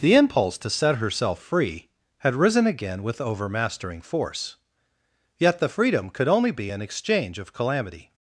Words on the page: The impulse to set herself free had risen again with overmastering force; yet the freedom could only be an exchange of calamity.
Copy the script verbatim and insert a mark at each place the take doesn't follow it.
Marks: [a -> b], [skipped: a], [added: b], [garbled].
The impulse to set herself free had risen again with overmastering force; yet the freedom could only be an exchange of calamity.